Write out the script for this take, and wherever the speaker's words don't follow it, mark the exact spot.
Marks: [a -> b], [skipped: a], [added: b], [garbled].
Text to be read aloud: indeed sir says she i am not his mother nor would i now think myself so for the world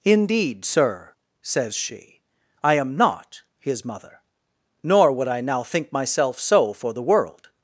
indeed sir says she i am not his mother nor would i now think myself so for the world